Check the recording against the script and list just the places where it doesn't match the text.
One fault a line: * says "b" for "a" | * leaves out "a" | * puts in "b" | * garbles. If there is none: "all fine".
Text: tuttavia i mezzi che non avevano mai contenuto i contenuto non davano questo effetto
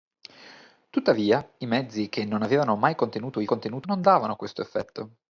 all fine